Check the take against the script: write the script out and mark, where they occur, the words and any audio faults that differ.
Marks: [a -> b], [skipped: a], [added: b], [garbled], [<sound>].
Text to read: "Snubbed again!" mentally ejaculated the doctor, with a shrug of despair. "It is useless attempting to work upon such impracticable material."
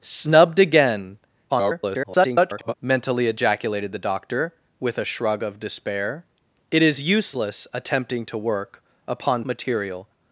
"Snubbed again!" [garbled] mentally ejaculated the doctor, with a shrug of despair. "It is useless attempting to work upon [skipped: such impracticable] material."